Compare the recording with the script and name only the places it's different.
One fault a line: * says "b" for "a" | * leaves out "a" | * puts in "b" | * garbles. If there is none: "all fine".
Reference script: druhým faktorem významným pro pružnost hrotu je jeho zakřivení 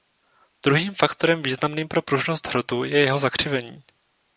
all fine